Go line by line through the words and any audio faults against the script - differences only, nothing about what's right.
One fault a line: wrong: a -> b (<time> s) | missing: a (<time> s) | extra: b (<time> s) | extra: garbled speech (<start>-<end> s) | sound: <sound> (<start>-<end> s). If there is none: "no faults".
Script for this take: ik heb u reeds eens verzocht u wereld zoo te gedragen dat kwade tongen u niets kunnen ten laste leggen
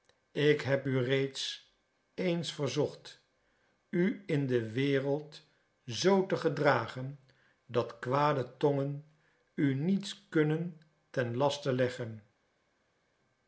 extra: in de (4.3 s)